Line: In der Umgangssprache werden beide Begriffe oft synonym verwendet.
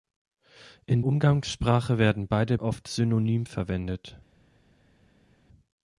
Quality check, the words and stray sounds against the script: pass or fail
fail